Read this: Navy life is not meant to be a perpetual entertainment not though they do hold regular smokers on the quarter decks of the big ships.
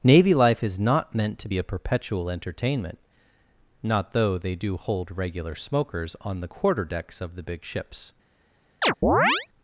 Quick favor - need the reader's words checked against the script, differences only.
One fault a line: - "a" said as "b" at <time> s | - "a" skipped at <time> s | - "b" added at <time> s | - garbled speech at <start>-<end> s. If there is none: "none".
none